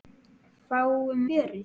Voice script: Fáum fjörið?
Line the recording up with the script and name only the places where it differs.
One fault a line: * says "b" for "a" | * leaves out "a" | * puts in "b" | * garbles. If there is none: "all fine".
all fine